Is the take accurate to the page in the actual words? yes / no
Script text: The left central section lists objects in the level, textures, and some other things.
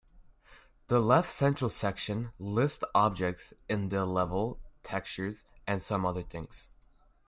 yes